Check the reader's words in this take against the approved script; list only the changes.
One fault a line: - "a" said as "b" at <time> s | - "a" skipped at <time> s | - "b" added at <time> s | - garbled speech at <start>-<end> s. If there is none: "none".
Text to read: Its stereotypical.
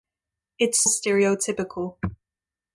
none